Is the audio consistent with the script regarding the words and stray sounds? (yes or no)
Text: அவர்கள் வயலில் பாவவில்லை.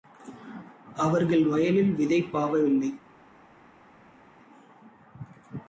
no